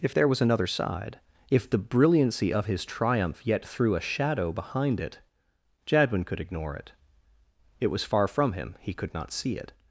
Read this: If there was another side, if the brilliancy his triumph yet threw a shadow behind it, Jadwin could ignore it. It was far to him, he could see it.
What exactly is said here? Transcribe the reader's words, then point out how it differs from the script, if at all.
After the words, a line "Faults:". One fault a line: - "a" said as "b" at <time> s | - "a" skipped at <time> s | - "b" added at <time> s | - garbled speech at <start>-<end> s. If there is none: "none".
If there was another side, if the brilliancy of his triumph yet threw a shadow behind it, Jadwin could ignore it. It was far from him, he could not see it.
Faults:
- "of" added at 2.5 s
- "to" said as "from" at 8.3 s
- "not" added at 9.1 s